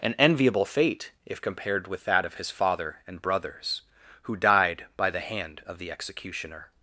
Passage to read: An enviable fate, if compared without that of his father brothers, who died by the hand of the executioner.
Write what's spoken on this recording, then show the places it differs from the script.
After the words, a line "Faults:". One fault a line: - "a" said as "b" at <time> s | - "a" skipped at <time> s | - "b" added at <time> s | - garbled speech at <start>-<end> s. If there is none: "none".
An enviable fate, if compared with that of his father and brothers, who died by the hand of the executioner.
Faults:
- "without" said as "with" at 1.9 s
- "and" added at 3.0 s